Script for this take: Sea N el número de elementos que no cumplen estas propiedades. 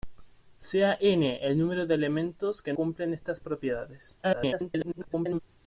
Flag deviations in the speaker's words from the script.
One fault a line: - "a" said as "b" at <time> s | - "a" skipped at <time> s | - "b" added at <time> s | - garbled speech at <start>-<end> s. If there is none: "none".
- "no" skipped at 2.7 s
- garbled speech at 4.2-5.4 s